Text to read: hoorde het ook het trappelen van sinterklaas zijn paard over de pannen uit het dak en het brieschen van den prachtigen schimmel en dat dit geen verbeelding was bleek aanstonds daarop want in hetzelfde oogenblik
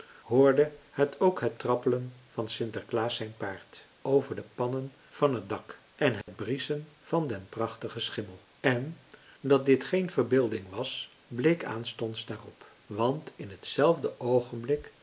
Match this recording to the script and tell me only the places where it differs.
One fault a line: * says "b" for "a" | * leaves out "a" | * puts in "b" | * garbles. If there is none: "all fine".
* says "van" for "uit"